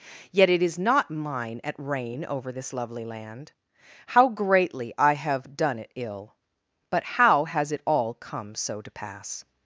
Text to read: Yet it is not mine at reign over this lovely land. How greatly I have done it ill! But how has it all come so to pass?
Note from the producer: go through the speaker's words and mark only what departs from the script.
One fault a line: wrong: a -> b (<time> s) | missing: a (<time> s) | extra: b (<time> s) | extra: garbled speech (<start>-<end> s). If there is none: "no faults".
no faults